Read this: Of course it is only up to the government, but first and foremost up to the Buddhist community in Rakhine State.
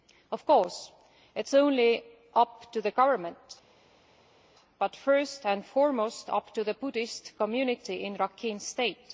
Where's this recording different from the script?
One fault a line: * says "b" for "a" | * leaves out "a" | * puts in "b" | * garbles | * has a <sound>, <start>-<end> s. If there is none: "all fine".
all fine